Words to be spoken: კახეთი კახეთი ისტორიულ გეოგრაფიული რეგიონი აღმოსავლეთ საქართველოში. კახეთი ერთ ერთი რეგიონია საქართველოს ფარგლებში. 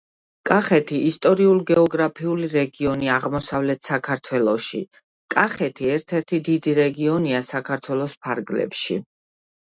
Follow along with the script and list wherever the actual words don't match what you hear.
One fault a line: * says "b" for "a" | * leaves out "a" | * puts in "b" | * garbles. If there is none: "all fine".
* leaves out "კახეთი"
* puts in "დიდი"